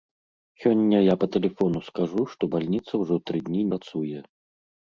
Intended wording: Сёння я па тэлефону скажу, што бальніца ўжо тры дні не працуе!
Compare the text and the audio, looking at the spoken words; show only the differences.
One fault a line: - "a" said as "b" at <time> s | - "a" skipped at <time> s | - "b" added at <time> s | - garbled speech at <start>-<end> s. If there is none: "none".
- "не" skipped at 3.7 s